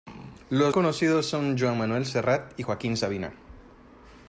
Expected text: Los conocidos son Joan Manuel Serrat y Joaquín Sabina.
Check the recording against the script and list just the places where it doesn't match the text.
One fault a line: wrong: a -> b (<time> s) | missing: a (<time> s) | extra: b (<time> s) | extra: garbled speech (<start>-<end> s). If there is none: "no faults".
no faults